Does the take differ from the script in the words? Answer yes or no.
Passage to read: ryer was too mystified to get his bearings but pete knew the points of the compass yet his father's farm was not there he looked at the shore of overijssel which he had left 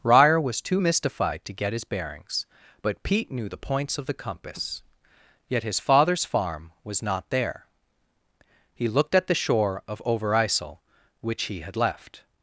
no